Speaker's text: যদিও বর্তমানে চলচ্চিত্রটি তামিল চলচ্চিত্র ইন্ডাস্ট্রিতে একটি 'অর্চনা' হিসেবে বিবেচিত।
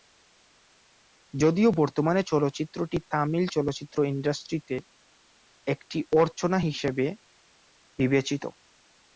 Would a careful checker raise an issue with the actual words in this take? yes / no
no